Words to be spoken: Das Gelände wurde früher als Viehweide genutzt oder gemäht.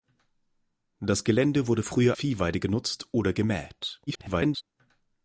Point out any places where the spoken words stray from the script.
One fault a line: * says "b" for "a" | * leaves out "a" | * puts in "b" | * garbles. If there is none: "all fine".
* leaves out "als"
* garbles